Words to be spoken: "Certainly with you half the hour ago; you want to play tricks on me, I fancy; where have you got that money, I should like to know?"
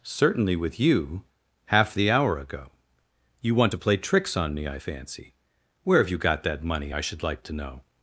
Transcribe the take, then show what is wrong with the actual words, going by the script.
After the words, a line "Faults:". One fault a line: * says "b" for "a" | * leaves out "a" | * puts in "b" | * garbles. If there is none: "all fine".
"Certainly with you half the hour ago; you want to play tricks on me, I fancy; where have you got that money, I should like to know?"
Faults:
all fine